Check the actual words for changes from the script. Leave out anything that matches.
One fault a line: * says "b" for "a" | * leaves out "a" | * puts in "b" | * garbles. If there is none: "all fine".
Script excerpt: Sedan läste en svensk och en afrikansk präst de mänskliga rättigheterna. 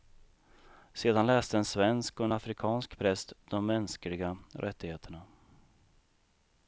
all fine